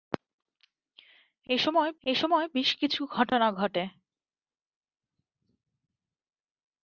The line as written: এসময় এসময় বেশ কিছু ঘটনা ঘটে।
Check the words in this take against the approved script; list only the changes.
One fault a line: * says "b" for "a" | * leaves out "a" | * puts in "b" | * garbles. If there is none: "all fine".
all fine